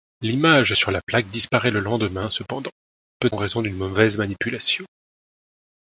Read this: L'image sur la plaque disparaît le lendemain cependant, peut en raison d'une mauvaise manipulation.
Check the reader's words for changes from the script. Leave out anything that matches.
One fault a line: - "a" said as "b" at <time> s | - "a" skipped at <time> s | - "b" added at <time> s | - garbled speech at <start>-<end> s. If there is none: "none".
none